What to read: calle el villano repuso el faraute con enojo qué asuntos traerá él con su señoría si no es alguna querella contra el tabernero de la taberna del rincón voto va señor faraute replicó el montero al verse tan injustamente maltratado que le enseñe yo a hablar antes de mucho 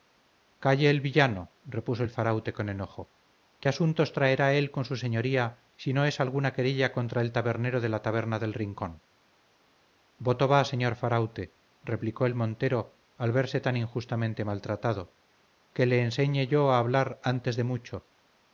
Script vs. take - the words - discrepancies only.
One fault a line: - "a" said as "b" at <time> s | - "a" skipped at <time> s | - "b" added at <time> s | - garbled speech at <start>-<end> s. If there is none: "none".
none